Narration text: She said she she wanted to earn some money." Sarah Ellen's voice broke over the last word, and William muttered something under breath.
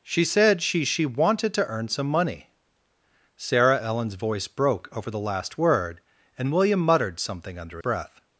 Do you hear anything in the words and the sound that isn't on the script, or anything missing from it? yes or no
no